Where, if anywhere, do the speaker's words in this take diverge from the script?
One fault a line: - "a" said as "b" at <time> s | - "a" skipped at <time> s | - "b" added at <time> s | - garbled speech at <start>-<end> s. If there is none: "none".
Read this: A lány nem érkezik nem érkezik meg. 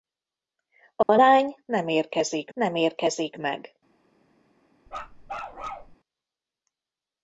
none